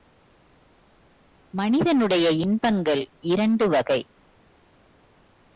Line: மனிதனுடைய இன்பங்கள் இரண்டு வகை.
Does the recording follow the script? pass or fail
pass